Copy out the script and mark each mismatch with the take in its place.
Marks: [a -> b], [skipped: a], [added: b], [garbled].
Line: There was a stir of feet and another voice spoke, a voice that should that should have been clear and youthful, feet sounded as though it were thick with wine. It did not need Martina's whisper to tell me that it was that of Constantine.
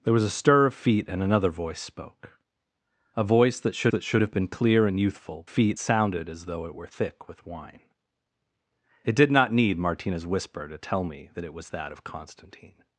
There was a stir of feet and another voice spoke, a voice that should that should have been clear and youthful, feet sounded as though it were thick with wine. It did not need Martina's whisper to tell me that it was that of Constantine.